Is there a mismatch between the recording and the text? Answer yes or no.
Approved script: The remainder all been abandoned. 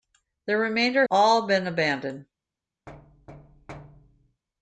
no